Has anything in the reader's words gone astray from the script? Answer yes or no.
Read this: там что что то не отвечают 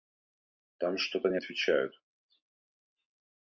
yes